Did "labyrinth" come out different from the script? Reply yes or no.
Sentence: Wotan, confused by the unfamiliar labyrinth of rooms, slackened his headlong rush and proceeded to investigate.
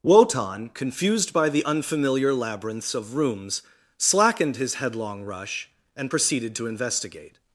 yes